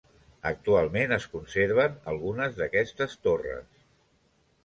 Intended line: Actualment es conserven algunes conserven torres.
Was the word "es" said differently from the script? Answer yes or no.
no